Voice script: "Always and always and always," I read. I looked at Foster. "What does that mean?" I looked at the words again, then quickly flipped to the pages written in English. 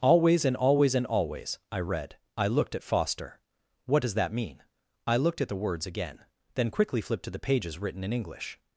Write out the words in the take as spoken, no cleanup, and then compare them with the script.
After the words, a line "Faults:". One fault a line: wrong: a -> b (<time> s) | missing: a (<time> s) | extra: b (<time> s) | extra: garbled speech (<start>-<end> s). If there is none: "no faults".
"Always and always and always," I read. I looked at Foster. "What does that mean?" I looked at the words again, then quickly flipped to the pages written in English.
Faults:
no faults